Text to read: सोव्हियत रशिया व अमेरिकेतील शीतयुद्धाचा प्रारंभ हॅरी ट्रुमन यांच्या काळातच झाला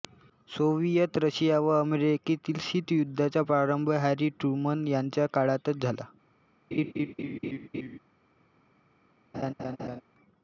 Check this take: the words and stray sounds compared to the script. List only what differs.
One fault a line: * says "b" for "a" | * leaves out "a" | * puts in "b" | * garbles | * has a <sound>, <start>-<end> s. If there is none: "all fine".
* has a laugh, 6.7-8.0 s
* has a laugh, 9.3-10.0 s